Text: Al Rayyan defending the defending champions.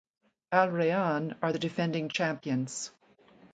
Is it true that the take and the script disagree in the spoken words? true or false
true